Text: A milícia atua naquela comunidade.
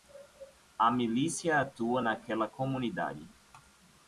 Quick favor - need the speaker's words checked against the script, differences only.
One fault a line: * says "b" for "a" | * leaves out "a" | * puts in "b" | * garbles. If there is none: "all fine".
all fine